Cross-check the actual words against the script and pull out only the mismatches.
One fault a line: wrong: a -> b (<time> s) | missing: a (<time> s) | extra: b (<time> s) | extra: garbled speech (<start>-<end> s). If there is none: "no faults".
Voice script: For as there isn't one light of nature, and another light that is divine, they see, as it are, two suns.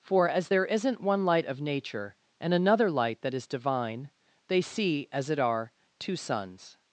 no faults